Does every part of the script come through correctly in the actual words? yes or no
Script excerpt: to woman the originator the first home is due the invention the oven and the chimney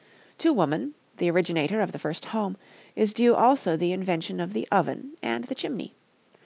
no